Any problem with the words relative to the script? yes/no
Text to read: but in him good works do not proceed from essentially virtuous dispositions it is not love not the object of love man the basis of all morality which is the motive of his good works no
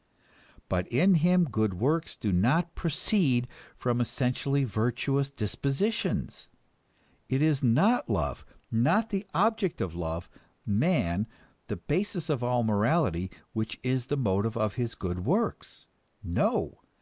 no